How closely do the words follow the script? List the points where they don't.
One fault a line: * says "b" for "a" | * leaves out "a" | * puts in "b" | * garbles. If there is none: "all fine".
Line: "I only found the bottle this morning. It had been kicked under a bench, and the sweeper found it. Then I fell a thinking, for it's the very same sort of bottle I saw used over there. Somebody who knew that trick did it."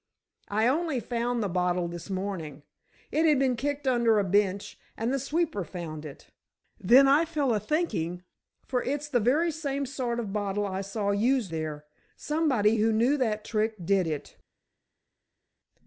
* leaves out "over"